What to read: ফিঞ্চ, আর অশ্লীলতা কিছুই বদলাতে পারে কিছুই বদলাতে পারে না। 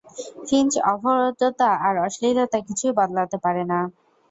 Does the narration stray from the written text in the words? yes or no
yes